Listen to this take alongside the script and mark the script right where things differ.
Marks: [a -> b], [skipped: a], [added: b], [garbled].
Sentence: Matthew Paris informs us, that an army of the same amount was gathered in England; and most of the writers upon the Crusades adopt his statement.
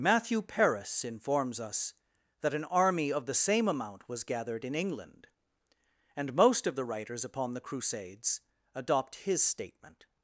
Matthew Paris informs us, that an army of the same amount was gathered in England; and most of the writers upon the Crusades adopt his statement.